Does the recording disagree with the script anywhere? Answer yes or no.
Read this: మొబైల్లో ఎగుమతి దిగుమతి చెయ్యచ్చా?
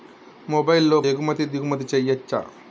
no